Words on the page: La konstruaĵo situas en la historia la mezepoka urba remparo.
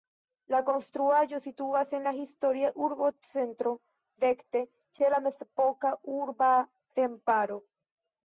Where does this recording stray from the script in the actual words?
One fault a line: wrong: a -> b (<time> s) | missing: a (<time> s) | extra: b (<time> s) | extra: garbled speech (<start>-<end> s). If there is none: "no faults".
extra: urbocentro rekte ĉe (2.8 s)